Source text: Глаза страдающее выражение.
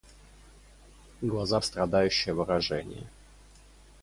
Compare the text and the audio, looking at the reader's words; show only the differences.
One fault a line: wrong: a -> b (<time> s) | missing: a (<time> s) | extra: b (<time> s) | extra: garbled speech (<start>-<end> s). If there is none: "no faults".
no faults